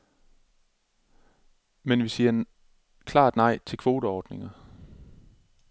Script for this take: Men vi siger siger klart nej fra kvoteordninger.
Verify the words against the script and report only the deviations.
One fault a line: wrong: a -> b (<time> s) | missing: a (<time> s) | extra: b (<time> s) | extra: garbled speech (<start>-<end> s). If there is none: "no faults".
missing: siger (2.4 s)
wrong: fra -> til (3.6 s)